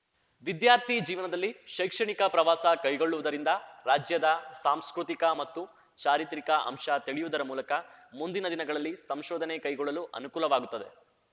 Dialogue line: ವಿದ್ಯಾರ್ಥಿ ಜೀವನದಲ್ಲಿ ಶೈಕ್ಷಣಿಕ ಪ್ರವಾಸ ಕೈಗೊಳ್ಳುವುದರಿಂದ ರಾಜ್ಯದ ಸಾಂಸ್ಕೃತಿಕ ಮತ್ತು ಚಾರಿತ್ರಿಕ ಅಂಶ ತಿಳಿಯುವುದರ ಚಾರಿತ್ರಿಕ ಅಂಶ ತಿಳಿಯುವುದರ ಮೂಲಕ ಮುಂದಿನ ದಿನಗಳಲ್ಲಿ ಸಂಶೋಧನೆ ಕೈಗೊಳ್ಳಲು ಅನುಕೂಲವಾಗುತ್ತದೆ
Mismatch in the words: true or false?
true